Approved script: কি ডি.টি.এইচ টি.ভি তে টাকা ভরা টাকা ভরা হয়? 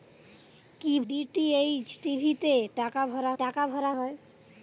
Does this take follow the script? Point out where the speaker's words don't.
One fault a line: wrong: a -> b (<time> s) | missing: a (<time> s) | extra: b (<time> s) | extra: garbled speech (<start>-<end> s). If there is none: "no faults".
no faults